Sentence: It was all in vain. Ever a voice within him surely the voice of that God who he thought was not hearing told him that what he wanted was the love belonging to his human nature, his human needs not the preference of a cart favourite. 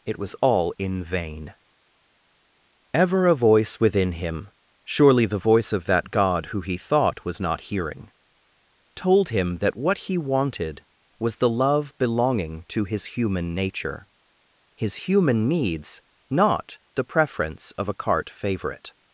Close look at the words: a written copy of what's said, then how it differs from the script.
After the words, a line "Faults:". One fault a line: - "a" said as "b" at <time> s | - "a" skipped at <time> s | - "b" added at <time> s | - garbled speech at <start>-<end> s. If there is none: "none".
It was all in vain. Ever a voice within him surely the voice of that God who he thought was not hearing told him that what he wanted was the love belonging to his human nature, his human needs not the preference of a cart favourite.
Faults:
none